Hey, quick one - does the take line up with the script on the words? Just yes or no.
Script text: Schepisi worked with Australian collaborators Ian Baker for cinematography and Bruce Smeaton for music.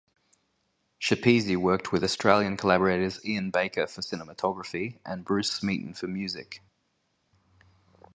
yes